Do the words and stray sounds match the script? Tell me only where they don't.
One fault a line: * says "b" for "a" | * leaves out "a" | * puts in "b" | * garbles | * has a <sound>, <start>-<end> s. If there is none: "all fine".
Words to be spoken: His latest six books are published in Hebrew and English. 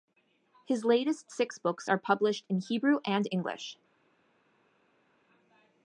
all fine